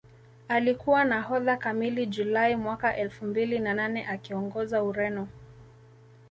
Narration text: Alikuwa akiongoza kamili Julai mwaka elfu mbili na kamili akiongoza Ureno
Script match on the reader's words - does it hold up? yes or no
no